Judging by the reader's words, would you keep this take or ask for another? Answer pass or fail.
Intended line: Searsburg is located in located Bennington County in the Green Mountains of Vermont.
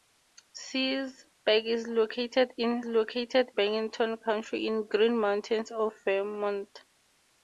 pass